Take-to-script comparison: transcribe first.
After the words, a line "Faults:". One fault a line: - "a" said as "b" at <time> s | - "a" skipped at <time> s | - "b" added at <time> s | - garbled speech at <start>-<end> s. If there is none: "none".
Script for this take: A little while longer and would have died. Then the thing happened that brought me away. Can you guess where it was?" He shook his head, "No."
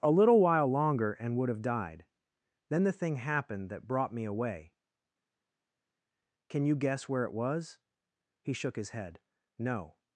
A little while longer and would have died. Then the thing happened that brought me away. Can you guess where it was?" He shook his head, "No."
Faults:
none